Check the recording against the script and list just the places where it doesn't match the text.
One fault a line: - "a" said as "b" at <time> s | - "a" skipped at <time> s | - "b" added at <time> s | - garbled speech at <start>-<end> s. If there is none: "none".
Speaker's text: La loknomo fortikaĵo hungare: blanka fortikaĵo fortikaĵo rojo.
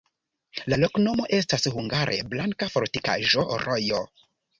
- "fortikaĵo" said as "estas" at 1.4 s
- "fortikaĵo" skipped at 3.5 s